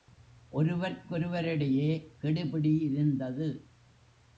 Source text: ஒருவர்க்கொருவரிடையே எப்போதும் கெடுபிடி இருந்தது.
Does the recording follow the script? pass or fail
fail